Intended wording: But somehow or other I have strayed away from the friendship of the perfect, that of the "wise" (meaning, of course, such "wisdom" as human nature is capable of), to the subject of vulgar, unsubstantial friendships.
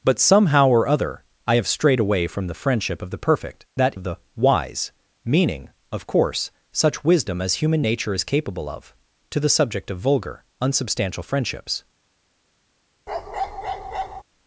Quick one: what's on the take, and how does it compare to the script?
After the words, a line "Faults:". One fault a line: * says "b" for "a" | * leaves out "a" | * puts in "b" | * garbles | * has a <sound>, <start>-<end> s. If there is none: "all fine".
But somehow or other I have strayed away from the friendship of the perfect, that of the "wise" (meaning, of course, such "wisdom" as human nature is capable of), to the subject of vulgar, unsubstantial friendships.
Faults:
* has a bark, 13.1-14.2 s